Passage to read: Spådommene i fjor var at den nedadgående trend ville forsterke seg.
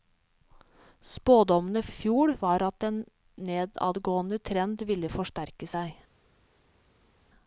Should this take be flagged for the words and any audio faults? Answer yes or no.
no